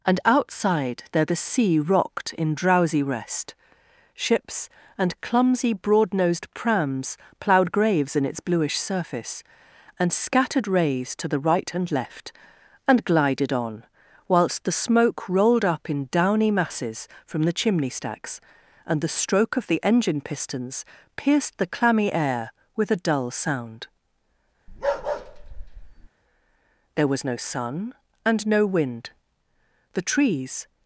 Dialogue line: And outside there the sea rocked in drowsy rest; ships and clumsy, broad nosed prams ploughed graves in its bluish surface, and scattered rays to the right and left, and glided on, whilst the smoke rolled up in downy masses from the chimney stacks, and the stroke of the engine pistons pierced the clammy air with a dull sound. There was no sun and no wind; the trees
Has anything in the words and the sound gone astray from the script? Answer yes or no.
yes